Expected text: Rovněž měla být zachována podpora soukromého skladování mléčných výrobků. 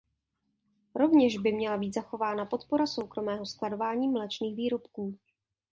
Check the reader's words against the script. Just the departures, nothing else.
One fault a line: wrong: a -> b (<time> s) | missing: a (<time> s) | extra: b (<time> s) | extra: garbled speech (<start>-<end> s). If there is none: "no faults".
extra: by (1.4 s)